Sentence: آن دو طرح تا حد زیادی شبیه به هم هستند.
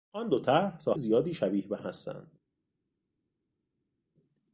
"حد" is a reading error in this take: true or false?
true